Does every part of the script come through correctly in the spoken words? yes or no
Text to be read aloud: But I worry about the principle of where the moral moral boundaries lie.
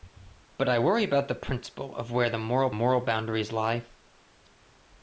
yes